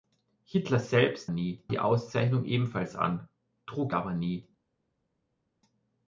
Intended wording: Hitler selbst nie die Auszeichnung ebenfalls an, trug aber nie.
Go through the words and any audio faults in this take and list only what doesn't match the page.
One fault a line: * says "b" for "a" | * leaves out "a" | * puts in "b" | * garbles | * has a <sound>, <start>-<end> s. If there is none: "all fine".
all fine